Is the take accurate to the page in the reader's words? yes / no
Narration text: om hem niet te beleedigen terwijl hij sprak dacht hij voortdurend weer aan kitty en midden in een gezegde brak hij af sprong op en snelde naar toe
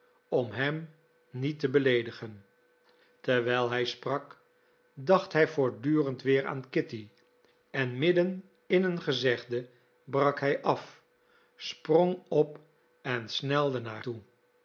yes